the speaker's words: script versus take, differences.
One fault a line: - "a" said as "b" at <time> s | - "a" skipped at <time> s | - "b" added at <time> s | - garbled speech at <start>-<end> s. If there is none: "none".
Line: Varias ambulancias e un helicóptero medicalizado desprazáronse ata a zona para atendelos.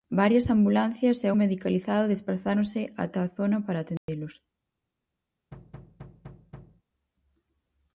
- "un helicóptero" skipped at 1.3 s